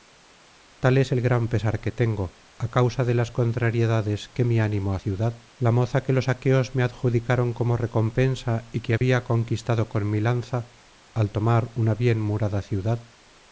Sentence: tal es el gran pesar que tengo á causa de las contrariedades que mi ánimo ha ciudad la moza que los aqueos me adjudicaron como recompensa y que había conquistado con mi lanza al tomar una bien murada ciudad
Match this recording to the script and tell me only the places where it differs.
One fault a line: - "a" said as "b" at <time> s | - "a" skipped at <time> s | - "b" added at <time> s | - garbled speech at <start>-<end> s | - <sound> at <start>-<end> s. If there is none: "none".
- dropout at 9.0-9.0 s